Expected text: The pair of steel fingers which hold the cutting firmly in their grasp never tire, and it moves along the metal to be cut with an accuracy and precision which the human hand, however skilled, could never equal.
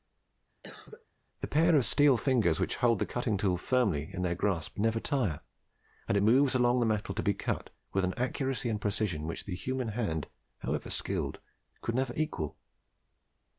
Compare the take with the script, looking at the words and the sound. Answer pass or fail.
fail